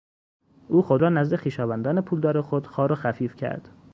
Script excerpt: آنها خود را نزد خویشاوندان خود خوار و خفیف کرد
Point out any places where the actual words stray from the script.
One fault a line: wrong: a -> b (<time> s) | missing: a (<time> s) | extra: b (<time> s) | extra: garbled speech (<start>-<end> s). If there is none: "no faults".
wrong: آنها -> او (0.7 s)
extra: پولدار (2.0 s)